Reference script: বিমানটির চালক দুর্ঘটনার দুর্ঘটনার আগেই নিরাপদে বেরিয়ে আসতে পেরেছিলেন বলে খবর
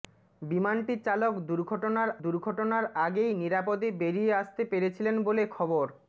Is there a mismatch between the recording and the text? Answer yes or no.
no